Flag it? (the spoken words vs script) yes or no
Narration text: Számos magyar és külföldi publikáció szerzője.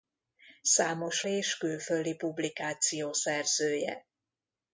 yes